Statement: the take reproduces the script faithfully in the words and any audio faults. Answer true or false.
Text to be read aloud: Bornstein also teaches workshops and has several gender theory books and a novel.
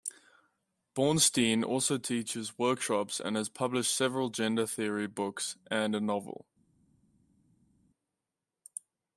false